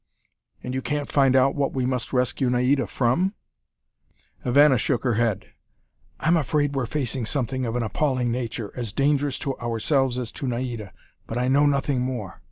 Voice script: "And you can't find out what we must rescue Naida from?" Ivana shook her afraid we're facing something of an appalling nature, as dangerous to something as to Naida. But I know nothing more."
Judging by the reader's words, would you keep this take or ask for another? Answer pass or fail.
fail